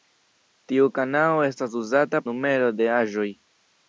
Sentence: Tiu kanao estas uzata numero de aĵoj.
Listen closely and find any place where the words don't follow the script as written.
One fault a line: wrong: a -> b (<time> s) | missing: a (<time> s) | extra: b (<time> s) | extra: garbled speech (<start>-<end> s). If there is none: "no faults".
no faults